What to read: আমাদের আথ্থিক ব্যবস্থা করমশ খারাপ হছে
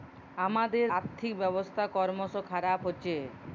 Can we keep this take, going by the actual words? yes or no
yes